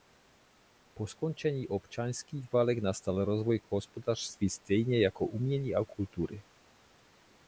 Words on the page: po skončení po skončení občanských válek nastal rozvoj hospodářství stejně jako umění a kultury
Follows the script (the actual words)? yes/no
no